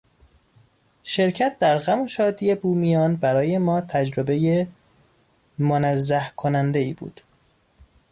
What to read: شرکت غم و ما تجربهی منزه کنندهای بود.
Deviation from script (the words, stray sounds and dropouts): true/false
true